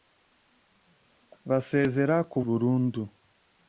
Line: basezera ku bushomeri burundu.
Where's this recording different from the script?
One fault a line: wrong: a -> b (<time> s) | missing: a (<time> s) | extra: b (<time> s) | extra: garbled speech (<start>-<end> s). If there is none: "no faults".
missing: bushomeri (2.4 s)